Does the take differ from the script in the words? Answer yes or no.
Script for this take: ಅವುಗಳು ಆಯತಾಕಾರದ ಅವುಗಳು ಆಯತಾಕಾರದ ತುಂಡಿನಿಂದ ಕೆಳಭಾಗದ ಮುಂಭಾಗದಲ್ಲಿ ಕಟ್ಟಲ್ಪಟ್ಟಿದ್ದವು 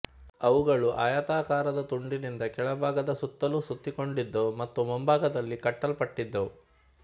yes